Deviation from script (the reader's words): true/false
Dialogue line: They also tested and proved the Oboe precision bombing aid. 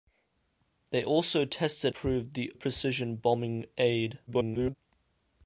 true